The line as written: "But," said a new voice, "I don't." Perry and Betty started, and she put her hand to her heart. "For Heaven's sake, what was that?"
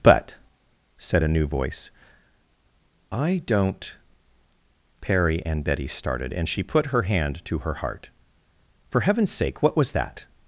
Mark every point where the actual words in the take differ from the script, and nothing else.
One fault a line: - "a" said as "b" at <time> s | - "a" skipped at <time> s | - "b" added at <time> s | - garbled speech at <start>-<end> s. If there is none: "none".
none